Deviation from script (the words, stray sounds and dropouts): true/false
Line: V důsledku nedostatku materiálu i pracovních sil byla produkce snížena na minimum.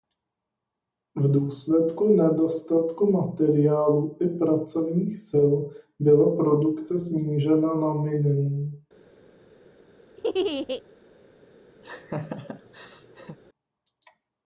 true